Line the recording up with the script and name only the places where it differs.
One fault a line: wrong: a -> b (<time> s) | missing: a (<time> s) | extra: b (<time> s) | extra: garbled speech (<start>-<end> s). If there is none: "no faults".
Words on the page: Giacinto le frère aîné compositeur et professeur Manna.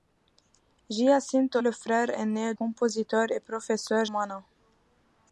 no faults